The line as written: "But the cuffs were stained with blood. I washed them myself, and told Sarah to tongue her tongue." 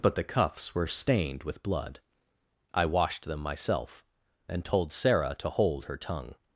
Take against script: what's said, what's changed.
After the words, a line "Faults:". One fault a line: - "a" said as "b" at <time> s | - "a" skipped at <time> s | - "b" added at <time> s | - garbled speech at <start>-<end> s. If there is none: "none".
"But the cuffs were stained with blood. I washed them myself, and told Sarah to hold her tongue."
Faults:
- "tongue" said as "hold" at 5.5 s